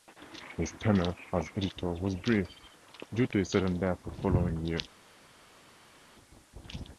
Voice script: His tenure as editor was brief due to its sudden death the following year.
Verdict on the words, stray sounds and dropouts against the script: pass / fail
fail